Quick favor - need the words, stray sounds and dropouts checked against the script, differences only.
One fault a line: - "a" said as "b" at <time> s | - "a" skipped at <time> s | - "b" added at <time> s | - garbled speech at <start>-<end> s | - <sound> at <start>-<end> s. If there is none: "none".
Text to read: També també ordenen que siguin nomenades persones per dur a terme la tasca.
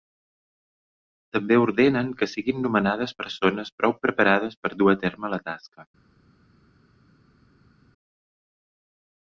- "també" skipped at 1.6 s
- "prou preparades" added at 3.8 s